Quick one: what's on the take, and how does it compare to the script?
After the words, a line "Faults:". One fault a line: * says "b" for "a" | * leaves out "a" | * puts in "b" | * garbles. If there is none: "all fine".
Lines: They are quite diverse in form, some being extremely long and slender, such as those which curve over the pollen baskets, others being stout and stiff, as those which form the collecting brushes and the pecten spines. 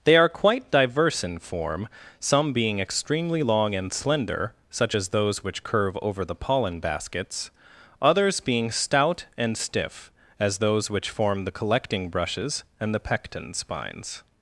They are quite diverse in form, some being extremely long and slender, such as those which curve over the pollen baskets, others being stout and stiff, as those which form the collecting brushes and the pecten spines.
Faults:
all fine